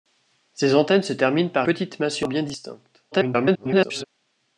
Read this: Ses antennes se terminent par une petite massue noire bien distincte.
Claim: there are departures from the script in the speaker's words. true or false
true